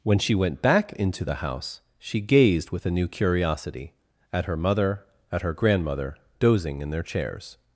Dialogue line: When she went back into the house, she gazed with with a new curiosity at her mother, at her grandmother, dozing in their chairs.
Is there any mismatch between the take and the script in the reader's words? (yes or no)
yes